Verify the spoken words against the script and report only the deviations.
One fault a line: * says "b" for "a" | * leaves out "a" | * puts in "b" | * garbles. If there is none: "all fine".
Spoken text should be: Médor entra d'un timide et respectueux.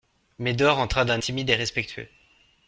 all fine